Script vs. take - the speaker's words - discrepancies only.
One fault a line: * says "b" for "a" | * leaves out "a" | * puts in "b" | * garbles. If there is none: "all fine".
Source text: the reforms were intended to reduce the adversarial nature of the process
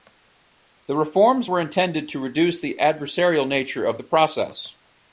all fine